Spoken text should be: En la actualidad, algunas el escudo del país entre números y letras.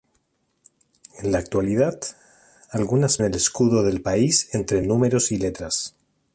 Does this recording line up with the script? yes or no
yes